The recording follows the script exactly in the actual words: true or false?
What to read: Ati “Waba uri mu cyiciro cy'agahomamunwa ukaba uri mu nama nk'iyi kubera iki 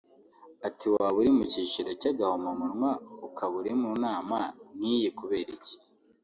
true